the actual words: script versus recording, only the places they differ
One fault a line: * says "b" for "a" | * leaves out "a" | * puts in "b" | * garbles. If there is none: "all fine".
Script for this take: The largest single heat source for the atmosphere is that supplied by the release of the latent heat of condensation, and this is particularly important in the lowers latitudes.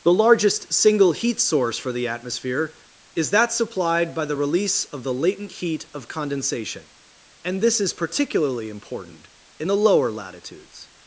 * says "lower" for "lowers"